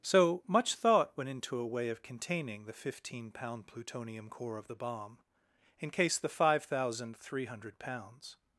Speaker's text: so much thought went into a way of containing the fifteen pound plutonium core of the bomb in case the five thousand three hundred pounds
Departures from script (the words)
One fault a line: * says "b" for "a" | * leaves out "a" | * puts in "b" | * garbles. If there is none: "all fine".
all fine